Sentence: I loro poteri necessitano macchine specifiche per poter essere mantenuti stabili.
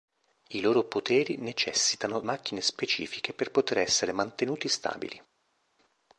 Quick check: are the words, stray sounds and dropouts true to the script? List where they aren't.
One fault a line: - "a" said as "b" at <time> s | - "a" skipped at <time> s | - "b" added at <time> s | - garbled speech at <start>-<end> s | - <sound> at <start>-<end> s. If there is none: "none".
none